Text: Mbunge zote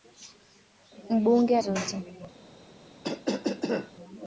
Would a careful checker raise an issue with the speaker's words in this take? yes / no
no